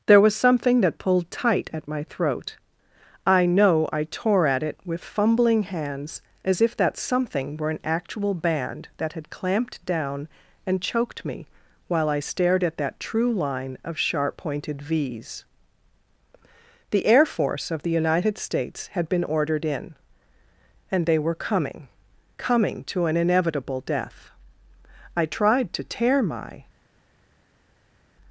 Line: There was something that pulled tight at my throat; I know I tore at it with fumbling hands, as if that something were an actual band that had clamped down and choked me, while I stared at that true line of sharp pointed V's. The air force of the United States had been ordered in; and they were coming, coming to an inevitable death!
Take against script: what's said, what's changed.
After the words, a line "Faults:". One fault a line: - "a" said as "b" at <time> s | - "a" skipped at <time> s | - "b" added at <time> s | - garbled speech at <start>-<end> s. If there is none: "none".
There was something that pulled tight at my throat; I know I tore at it with fumbling hands, as if that something were an actual band that had clamped down and choked me, while I stared at that true line of sharp pointed V's. The air force of the United States had been ordered in; and they were coming, coming to an inevitable death! I tried to tear my
Faults:
- "I tried to tear my" added at 25.2 s